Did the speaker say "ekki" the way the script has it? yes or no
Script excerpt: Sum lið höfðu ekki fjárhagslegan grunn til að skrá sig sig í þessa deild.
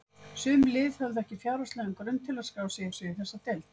yes